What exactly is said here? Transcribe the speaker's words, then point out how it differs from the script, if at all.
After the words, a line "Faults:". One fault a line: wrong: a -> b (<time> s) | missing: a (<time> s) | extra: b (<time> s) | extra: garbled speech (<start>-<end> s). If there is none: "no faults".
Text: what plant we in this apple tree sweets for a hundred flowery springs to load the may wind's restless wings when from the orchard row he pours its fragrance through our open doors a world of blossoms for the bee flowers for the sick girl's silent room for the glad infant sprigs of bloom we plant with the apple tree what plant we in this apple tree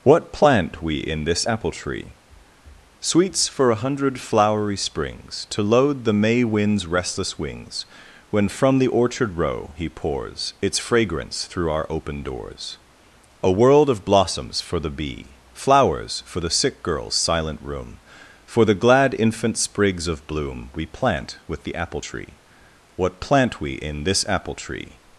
what plant we in this apple tree sweets for a hundred flowery springs to load the may wind's restless wings when from the orchard row he pours its fragrance through our open doors a world of blossoms for the bee flowers for the sick girl's silent room for the glad infant sprigs of bloom we plant with the apple tree what plant we in this apple tree
Faults:
no faults